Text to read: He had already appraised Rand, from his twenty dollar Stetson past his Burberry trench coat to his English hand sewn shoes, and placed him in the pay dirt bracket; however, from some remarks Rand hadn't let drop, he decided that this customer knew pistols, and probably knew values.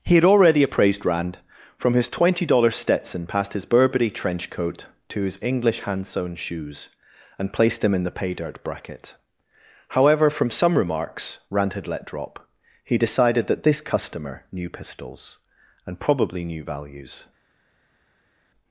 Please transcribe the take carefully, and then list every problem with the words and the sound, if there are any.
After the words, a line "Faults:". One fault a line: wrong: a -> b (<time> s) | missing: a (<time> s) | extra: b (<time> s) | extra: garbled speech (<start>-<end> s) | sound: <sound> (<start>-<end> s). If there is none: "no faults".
He had already appraised Rand, from his twenty dollar Stetson past his Burberry trench coat to his English hand sewn shoes, and placed him in the pay dirt bracket; however, from some remarks Rand had let drop, he decided that this customer knew pistols, and probably knew values.
Faults:
wrong: hadn't -> had (11.7 s)